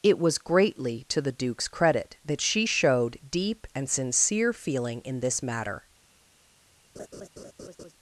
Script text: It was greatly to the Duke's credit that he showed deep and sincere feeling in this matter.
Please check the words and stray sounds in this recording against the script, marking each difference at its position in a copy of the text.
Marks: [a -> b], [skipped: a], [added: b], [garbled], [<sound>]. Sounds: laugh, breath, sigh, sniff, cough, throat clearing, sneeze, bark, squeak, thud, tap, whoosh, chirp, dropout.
It was greatly to the Duke's credit that [he -> she] showed deep and sincere feeling in this matter. [laugh]